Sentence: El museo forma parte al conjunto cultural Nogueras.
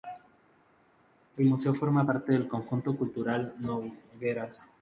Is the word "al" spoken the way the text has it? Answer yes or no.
no